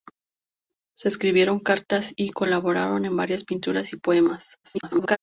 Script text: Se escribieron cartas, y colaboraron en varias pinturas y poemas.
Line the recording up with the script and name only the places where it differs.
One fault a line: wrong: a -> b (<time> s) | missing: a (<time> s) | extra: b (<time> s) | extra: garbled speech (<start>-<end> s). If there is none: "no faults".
extra: garbled speech (4.6-5.2 s)